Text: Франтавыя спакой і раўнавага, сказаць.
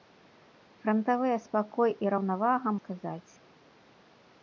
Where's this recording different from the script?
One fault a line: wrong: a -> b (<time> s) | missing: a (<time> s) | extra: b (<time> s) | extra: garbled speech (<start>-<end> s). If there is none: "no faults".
no faults